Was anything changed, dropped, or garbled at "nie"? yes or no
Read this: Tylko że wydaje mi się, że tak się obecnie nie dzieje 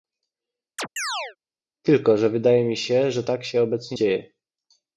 yes